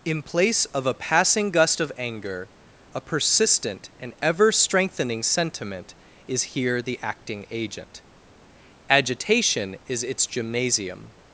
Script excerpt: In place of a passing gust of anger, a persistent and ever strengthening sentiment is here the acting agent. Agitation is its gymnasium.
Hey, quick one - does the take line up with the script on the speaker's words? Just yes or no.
yes